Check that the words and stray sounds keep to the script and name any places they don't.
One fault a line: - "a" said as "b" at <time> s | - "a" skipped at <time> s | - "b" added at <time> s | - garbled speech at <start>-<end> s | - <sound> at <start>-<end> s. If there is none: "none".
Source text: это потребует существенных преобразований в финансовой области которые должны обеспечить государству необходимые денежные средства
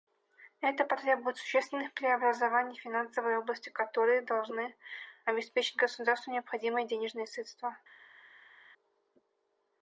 none